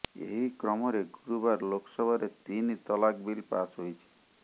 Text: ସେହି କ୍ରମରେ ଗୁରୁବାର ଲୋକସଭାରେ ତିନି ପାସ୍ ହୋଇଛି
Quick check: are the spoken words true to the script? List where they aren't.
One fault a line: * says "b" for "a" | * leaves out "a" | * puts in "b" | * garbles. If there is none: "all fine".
* says "ଏହି" for "ସେହି"
* puts in "ତଲାକ ବିଲ୍"